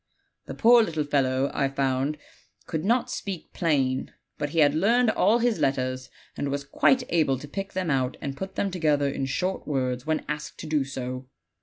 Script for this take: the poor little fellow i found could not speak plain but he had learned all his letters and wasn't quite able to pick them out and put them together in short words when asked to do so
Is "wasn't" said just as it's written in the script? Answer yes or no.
no